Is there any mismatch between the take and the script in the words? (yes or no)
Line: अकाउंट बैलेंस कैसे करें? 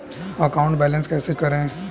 no